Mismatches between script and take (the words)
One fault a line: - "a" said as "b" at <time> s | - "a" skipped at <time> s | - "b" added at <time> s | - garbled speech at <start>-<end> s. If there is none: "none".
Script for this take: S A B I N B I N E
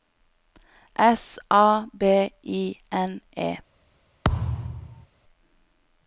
- "B I N" skipped at 3.2 s